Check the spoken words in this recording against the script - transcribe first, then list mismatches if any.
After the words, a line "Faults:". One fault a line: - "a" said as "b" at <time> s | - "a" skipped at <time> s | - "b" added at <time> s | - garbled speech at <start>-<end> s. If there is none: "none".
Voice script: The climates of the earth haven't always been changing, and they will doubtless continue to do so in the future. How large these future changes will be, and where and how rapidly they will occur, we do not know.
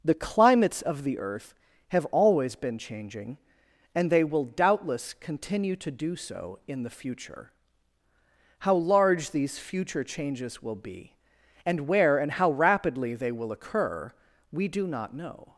The climates of the earth have always been changing, and they will doubtless continue to do so in the future. How large these future changes will be, and where and how rapidly they will occur, we do not know.
Faults:
- "haven't" said as "have" at 1.9 s